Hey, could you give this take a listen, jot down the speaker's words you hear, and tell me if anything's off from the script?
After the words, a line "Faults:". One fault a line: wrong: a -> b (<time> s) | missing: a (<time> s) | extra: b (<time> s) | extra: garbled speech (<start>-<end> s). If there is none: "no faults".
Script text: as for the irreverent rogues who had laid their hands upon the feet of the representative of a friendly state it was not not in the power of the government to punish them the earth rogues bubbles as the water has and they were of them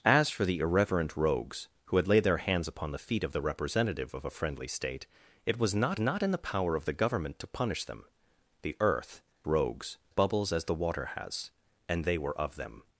as for the irreverent rogues who had laid their hands upon the feet of the representative of a friendly state it was not not in the power of the government to punish them the earth rogues bubbles as the water has and they were of them
Faults:
no faults